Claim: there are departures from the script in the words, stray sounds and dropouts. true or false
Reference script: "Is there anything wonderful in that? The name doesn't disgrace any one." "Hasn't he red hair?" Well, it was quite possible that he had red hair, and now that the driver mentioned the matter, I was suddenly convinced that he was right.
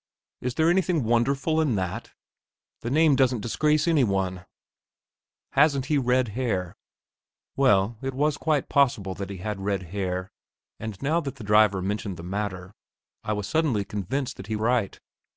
true